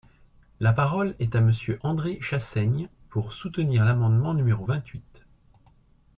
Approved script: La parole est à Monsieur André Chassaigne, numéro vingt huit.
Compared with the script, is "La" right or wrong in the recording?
right